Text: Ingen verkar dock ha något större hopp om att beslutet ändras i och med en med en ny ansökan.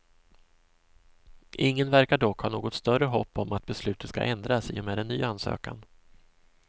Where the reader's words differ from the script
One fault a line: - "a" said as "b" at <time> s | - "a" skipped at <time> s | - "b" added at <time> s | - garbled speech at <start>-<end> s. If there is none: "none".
- "ska" added at 4.1 s
- "med en" skipped at 5.1 s